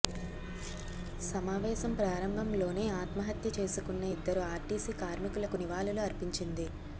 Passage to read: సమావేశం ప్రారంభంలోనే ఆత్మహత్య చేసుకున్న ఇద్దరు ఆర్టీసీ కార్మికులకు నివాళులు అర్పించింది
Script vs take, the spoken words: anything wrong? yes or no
no